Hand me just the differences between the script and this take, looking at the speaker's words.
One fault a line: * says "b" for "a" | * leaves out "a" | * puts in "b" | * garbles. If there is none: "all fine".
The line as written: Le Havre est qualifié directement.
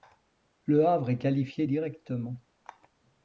all fine